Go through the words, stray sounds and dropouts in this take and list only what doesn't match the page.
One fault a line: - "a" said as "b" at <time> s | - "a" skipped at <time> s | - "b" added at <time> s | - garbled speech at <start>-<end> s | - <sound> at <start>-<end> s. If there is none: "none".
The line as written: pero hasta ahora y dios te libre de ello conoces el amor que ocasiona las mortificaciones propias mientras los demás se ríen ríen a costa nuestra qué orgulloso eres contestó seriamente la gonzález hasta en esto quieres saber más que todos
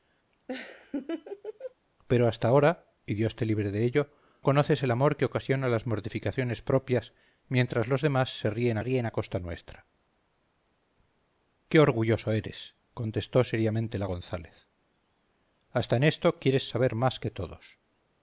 - laugh at 0.5-1.7 s